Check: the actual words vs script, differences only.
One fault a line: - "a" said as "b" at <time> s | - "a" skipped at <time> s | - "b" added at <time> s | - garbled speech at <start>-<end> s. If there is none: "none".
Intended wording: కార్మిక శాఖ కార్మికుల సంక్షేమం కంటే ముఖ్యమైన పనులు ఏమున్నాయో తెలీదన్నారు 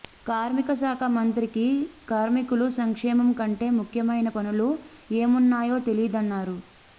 - "మంత్రికి" added at 1.1 s